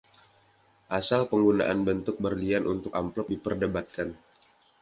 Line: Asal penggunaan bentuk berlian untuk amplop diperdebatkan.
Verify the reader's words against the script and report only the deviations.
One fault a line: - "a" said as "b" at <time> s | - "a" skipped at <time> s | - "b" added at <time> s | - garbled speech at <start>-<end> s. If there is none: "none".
none